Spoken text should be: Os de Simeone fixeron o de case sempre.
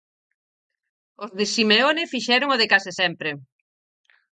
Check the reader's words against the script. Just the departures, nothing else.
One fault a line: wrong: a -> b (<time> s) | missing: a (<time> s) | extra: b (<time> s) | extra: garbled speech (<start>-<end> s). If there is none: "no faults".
no faults